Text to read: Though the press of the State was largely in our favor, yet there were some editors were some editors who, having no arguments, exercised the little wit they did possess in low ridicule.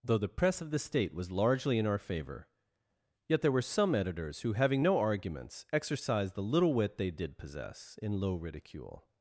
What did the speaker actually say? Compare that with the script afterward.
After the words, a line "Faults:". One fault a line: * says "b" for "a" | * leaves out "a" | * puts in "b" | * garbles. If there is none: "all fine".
Though the press of the State was largely in our favor, yet there were some editors who, having no arguments, exercised the little wit they did possess in low ridicule.
Faults:
* leaves out "were some editors"